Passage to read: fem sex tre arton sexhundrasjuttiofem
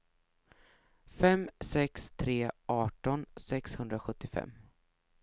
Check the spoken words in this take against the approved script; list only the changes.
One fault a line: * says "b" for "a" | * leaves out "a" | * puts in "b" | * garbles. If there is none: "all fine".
all fine